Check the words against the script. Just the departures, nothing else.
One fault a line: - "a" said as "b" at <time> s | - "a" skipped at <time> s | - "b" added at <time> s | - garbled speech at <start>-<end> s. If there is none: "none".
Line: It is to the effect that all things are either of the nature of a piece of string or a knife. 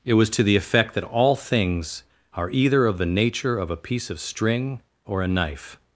- "is" said as "was" at 0.1 s